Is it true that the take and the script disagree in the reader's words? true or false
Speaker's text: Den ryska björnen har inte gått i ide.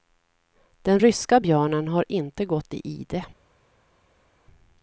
false